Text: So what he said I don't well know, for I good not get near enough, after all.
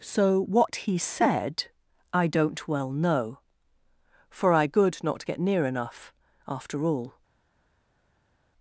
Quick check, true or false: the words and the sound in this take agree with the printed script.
true